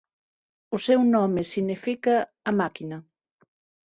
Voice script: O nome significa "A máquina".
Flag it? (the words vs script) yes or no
yes